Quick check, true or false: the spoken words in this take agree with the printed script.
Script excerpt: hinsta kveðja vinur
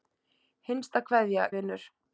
true